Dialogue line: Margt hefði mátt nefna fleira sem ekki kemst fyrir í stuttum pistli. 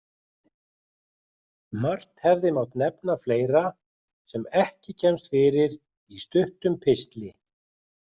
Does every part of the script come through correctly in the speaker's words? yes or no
yes